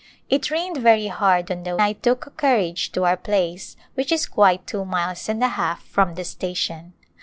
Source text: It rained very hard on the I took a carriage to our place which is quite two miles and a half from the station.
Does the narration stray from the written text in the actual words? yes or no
no